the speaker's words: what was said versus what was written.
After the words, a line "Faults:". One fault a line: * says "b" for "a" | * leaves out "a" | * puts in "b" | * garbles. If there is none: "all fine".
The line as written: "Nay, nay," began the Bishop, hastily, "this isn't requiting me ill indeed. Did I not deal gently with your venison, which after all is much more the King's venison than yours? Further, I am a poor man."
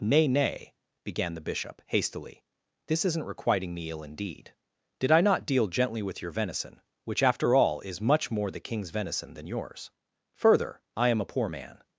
"Nay, nay," began the Bishop, hastily, "this isn't requiting me ill indeed. Did I not deal gently with your venison, which after all is much more the King's venison than yours? Further, I am a poor man."
Faults:
all fine